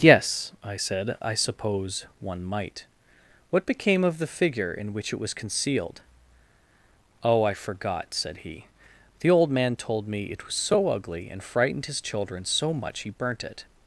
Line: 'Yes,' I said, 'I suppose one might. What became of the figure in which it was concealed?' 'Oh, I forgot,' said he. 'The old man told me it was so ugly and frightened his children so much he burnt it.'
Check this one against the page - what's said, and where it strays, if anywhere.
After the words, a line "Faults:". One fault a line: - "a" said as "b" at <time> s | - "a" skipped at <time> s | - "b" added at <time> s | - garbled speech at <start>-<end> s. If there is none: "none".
'Yes,' I said, 'I suppose one might. What became of the figure in which it was concealed?' 'Oh, I forgot,' said he. 'The old man told me it was so ugly and frightened his children so much he burnt it.'
Faults:
none